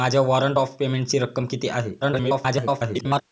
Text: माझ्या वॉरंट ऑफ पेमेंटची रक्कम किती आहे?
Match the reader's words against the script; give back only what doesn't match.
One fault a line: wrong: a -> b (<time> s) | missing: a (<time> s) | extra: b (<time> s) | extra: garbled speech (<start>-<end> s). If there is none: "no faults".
extra: garbled speech (2.0-3.2 s)